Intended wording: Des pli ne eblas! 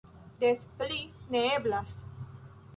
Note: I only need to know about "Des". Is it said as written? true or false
true